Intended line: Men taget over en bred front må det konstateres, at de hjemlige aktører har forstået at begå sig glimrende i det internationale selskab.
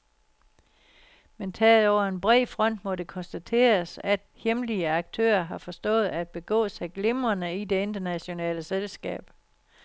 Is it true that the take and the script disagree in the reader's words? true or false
true